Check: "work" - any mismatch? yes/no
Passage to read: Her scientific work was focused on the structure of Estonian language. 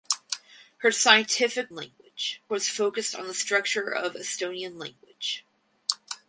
yes